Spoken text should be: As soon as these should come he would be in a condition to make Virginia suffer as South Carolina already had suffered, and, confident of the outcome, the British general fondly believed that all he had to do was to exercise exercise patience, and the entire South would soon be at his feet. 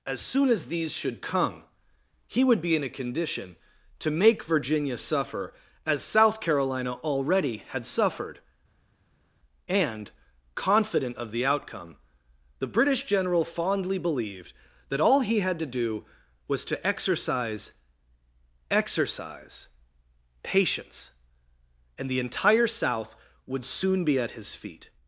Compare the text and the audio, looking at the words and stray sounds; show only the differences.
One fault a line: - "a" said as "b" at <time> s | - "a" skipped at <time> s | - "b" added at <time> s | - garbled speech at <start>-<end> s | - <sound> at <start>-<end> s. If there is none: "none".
none